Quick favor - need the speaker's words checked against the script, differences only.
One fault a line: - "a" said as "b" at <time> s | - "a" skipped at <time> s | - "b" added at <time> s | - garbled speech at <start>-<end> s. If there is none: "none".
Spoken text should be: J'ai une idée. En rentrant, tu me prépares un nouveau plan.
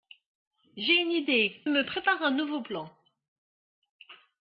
- "En rentrant tu" skipped at 1.6 s